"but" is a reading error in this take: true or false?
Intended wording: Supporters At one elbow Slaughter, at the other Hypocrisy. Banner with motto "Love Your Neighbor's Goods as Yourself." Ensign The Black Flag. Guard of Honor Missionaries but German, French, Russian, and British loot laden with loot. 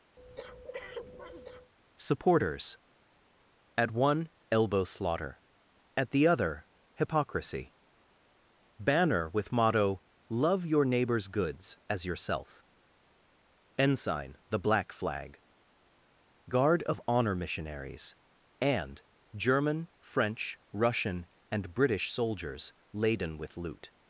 true